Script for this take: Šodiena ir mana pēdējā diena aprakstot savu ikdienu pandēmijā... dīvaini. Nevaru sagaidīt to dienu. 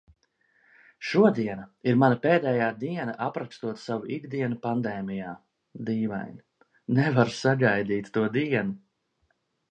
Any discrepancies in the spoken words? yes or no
no